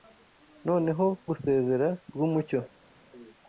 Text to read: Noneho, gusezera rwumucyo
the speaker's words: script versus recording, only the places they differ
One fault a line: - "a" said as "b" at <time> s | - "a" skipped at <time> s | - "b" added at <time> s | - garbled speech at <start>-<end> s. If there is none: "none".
none